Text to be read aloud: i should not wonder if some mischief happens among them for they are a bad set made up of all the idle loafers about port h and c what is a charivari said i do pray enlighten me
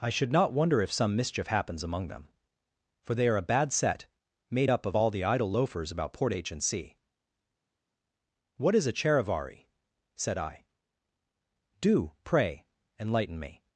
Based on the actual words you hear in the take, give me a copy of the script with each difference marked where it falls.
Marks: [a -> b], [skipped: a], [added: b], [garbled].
i should not wonder if some mischief happens among them for they are a bad set made up of all the idle loafers about port h and c what is a charivari said i do pray enlighten me